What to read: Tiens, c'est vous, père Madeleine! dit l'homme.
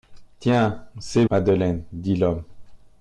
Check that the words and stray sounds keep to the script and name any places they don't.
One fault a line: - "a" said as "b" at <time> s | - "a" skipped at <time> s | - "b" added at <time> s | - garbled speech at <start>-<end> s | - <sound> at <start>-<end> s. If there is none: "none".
- "vous père" skipped at 1.2 s